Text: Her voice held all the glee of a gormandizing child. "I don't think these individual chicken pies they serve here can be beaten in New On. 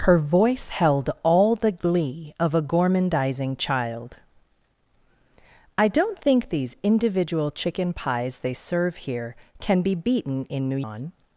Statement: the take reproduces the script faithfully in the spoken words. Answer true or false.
true